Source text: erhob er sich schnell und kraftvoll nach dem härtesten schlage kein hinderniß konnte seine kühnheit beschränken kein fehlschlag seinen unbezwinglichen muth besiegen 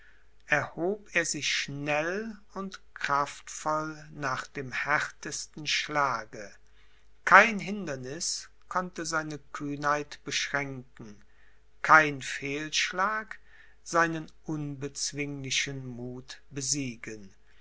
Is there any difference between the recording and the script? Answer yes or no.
no